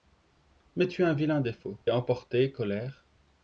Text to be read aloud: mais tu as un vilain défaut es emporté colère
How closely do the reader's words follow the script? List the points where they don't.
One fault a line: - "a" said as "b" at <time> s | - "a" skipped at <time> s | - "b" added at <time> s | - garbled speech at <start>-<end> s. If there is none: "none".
none